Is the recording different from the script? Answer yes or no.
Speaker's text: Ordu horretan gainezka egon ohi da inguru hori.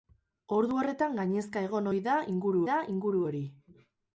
yes